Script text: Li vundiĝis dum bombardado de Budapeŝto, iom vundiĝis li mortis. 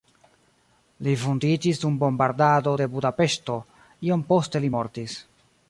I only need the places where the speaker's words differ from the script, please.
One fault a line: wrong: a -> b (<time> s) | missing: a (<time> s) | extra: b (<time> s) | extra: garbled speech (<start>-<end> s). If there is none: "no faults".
wrong: vundiĝis -> poste (4.3 s)